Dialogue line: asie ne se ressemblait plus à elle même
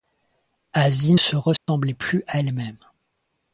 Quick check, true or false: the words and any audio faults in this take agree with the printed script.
false